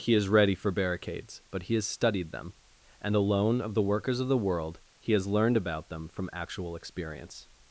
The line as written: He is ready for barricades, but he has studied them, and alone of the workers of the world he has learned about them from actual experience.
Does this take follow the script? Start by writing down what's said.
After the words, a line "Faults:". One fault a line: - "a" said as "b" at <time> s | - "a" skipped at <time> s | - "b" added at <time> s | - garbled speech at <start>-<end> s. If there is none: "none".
He is ready for barricades, but he has studied them, and alone of the workers of the world he has learned about them from actual experience.
Faults:
none